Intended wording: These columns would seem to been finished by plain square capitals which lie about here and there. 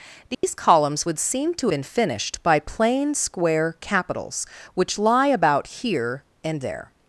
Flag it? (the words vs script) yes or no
no